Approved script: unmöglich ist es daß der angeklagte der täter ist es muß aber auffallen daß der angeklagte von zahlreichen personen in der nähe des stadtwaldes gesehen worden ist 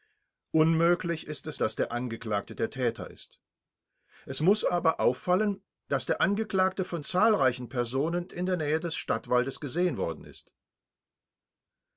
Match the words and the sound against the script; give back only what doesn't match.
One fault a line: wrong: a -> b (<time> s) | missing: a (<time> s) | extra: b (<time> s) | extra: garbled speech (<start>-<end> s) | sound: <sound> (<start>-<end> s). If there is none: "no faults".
no faults